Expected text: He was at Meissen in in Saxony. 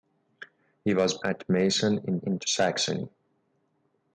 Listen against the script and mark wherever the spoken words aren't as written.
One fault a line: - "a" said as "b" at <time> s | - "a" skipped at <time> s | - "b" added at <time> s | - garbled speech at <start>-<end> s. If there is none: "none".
none